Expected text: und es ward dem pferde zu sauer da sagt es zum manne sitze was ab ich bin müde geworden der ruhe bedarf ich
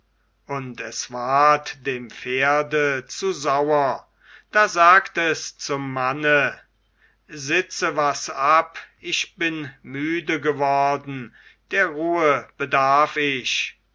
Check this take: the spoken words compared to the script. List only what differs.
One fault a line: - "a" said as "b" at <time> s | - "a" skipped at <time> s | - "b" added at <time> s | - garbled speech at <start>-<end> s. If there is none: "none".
none